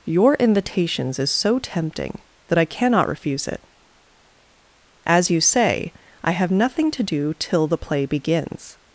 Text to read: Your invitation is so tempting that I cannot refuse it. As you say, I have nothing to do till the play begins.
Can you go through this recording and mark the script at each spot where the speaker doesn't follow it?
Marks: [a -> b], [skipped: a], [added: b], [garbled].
Your [invitation -> invitations] is so tempting that I cannot refuse it. As you say, I have nothing to do till the play begins.